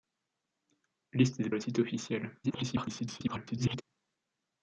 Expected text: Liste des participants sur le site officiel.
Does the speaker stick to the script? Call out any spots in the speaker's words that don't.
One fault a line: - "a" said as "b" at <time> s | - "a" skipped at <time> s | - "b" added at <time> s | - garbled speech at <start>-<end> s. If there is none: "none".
- "participants sur" skipped at 1.5 s
- garbled speech at 2.4-3.8 s